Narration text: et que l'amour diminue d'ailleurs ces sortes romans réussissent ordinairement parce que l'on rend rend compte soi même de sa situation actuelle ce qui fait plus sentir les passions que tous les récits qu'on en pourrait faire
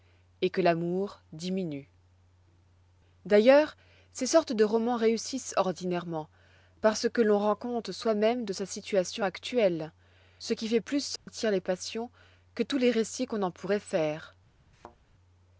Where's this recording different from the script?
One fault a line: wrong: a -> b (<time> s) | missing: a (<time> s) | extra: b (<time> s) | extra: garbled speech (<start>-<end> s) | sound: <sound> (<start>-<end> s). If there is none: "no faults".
extra: de (4.5 s)
missing: rend (7.5 s)
sound: dropout (11.2-11.3 s)
sound: thud (14.7-15.0 s)